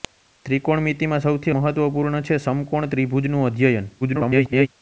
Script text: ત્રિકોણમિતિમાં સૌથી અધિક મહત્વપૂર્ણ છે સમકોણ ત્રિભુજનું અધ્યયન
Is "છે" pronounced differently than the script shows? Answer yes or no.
no